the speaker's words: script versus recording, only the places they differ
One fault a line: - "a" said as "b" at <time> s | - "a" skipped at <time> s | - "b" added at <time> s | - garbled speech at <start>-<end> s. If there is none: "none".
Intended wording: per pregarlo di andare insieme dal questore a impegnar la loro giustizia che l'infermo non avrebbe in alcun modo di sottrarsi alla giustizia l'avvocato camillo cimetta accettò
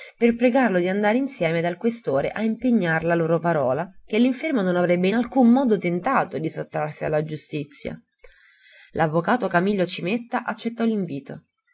- "giustizia" said as "parola" at 3.4 s
- "tentato" added at 5.8 s